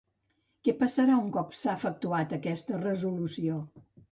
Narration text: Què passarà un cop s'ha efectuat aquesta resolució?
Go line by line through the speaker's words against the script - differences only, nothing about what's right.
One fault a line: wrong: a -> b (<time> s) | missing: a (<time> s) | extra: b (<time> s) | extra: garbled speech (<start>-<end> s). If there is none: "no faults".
no faults